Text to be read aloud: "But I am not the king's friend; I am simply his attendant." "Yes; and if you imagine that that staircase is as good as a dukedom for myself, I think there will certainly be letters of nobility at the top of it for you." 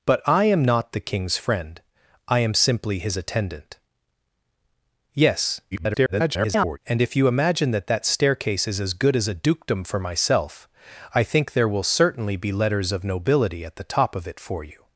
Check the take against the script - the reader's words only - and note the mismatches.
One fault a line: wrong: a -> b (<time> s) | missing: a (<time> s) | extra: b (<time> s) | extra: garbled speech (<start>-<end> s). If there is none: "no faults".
extra: garbled speech (5.7-6.8 s)